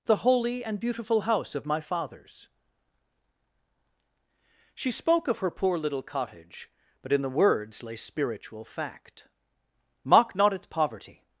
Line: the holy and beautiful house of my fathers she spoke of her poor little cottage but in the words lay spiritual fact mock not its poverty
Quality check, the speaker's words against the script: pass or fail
pass